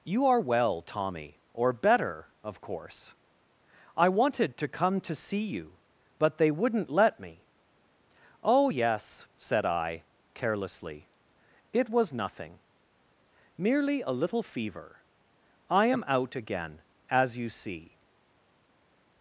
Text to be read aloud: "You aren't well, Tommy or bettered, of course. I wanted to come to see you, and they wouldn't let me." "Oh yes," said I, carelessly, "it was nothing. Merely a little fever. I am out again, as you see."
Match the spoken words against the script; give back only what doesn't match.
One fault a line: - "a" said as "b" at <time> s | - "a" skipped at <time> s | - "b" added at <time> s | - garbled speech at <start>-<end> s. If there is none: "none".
- "aren't" said as "are" at 0.2 s
- "bettered" said as "better" at 1.7 s
- "and" said as "but" at 6.2 s